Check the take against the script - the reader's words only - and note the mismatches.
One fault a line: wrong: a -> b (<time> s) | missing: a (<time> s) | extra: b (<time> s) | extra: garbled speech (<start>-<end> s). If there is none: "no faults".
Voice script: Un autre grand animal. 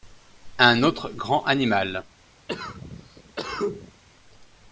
no faults